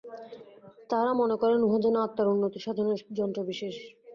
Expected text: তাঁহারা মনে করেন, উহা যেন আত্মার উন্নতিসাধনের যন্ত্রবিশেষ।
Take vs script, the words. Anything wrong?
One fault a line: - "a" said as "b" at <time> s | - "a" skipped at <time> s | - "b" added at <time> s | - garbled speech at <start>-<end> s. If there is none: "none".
none